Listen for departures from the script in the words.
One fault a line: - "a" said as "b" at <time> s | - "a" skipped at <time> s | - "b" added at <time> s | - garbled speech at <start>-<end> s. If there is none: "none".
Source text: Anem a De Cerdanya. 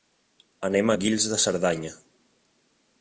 - "Guils" added at 1.0 s